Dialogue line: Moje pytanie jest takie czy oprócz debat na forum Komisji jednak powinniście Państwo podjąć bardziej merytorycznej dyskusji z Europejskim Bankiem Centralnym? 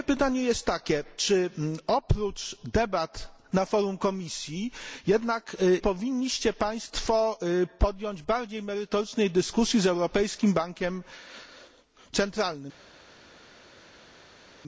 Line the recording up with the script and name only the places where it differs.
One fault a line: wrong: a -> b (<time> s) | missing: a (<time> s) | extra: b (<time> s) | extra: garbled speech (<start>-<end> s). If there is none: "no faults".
no faults